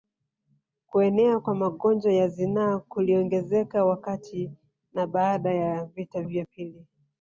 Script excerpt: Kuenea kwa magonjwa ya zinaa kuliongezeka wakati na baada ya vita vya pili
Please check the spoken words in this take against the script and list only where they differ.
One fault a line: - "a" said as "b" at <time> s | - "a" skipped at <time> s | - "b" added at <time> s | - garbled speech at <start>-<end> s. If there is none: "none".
none